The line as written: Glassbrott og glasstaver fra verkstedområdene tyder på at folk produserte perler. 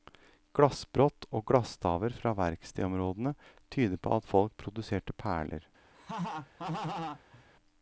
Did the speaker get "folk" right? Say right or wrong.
right